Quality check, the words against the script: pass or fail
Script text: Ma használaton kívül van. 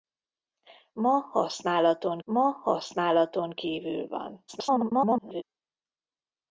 fail